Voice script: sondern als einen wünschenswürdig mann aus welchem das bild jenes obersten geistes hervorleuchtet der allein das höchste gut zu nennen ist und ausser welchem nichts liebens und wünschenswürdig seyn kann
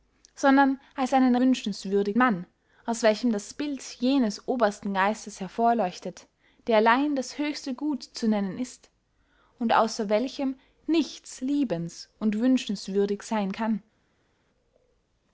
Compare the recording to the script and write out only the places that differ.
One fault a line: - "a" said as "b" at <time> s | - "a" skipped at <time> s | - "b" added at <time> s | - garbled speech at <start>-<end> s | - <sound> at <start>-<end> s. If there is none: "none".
none